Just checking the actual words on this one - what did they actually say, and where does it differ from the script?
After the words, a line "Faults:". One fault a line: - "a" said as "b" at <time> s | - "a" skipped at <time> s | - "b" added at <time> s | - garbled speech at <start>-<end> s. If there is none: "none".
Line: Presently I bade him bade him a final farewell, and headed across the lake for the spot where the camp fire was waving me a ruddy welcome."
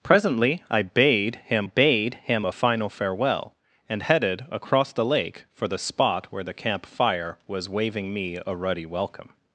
Presently I bade him bade him a final farewell, and headed across the lake for the spot where the camp fire was waving me a ruddy welcome."
Faults:
none